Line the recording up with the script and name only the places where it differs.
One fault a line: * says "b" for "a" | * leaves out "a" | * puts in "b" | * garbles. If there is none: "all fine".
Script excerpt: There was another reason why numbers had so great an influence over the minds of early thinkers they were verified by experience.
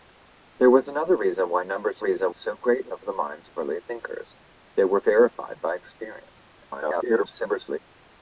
* says "reason" for "had"
* leaves out "influence"
* garbles